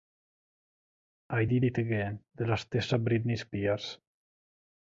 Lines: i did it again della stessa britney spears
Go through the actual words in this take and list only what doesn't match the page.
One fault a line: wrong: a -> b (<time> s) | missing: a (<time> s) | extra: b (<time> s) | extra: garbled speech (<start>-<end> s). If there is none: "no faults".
no faults